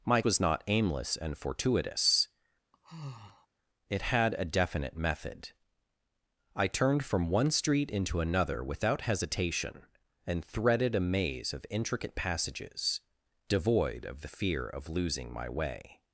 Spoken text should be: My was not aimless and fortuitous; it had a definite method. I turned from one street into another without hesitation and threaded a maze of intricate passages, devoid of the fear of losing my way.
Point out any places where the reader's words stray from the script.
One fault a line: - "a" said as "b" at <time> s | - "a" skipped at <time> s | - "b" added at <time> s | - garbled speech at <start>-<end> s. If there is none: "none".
none